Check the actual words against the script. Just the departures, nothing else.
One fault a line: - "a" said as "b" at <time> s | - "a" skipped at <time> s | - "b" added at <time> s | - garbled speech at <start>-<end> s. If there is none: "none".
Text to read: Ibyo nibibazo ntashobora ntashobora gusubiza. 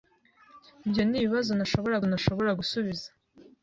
none